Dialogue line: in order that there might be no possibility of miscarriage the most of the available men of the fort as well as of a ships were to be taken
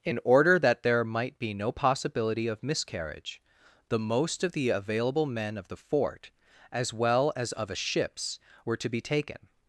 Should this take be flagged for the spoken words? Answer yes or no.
no